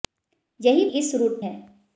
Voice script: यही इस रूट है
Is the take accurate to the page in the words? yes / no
yes